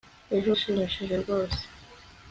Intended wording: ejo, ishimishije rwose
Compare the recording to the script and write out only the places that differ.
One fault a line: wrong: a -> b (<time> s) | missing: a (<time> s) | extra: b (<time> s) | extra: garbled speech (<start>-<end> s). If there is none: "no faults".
no faults